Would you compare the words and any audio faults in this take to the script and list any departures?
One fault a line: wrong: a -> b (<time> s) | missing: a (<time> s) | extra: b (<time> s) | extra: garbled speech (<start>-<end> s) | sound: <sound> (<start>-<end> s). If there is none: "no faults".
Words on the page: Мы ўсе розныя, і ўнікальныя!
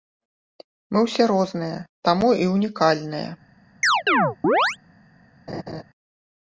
extra: таму (2.1 s)
sound: chirp (3.8-4.8 s)
sound: laugh (5.5-5.8 s)